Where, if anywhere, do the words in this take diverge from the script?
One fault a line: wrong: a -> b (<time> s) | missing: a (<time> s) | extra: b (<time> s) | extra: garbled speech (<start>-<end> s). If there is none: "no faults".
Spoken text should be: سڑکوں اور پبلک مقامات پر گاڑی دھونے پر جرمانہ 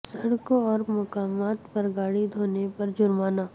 missing: پبلک (0.8 s)